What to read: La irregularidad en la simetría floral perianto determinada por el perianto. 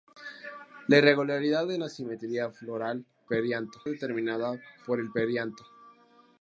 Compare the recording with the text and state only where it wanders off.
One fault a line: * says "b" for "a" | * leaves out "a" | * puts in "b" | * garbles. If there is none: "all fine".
all fine